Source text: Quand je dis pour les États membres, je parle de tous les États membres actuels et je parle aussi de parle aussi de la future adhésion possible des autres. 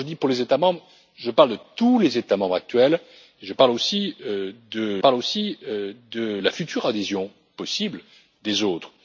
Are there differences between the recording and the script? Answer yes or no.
no